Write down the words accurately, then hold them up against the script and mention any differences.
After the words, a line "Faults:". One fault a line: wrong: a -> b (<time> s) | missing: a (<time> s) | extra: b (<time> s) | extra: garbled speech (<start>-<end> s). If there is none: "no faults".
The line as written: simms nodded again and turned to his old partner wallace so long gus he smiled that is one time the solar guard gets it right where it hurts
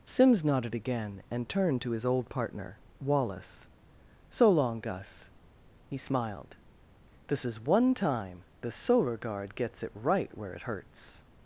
simms nodded again and turned to his old partner wallace so long gus he smiled this is one time the solar guard gets it right where it hurts
Faults:
wrong: that -> this (7.3 s)